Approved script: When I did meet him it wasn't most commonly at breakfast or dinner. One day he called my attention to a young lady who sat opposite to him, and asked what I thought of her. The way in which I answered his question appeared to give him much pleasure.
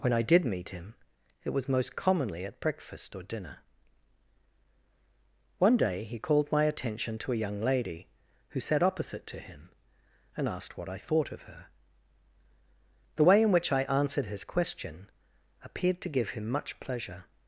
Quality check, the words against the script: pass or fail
fail